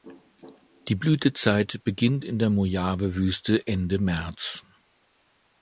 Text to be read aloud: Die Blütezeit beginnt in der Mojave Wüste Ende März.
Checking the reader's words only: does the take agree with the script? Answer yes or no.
yes